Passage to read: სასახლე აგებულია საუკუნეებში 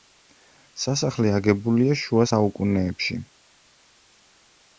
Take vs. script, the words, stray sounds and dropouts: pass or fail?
fail